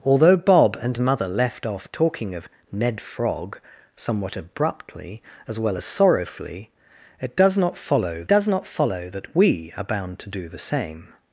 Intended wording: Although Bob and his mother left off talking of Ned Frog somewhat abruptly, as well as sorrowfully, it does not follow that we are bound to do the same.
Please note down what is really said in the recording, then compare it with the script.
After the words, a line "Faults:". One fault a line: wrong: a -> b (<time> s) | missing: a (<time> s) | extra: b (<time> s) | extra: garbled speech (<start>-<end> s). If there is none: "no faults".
Although Bob and mother left off talking of Ned Frog somewhat abruptly, as well as sorrowfully, it does not follow does not follow that we are bound to do the same.
Faults:
missing: his (1.0 s)
extra: does not follow (8.3 s)